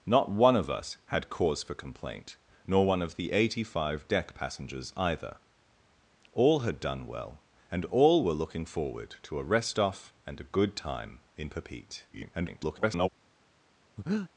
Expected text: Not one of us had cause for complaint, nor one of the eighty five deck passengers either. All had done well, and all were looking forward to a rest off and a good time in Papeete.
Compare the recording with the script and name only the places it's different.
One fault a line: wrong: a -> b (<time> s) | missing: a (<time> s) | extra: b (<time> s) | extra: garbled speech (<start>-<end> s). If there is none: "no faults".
extra: garbled speech (12.1-13.1 s)